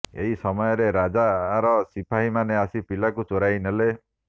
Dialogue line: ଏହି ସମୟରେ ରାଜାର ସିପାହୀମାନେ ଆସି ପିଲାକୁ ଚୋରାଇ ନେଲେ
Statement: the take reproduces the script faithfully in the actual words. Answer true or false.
true